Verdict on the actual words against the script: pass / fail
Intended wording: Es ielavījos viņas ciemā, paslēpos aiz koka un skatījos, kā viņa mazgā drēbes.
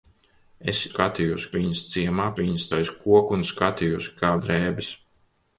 fail